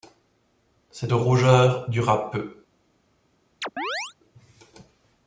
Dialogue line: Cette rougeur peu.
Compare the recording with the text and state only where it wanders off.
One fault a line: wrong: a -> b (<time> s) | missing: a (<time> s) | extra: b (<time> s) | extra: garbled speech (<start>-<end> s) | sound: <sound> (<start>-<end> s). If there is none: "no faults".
extra: dura (1.9 s)
sound: chirp (3.6-4.1 s)